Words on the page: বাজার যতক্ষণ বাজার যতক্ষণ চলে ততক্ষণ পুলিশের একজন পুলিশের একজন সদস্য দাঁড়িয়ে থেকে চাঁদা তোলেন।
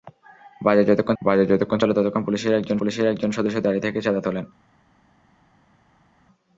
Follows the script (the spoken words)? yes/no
yes